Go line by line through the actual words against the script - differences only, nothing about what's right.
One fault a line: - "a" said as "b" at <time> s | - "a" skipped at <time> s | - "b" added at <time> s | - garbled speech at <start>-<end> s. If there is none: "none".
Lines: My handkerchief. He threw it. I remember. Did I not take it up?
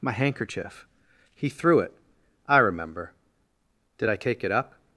- "not" skipped at 4.1 s